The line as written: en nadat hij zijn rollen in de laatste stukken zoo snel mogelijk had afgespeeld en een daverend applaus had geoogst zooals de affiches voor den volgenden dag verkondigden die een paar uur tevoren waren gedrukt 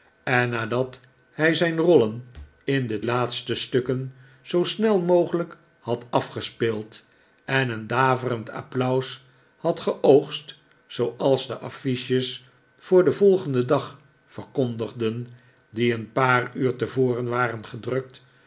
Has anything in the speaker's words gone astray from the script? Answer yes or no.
no